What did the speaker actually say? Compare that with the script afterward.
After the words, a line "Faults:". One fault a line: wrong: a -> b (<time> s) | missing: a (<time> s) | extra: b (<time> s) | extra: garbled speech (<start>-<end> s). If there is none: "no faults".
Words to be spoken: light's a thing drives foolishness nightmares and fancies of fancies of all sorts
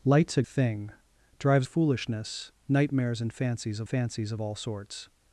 light's a thing drives foolishness nightmares and fancies of fancies of all sorts
Faults:
no faults